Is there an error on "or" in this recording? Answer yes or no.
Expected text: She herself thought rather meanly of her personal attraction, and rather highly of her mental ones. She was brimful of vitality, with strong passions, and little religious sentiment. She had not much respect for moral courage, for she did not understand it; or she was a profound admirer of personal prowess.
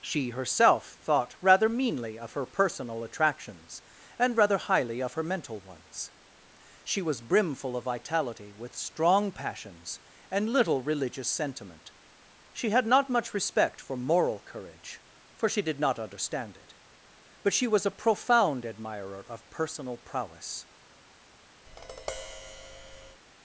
yes